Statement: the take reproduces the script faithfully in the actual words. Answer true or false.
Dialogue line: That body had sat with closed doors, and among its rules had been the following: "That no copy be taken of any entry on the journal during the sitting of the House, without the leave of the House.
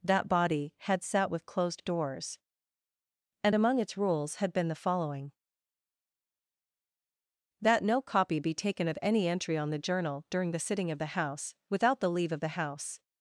true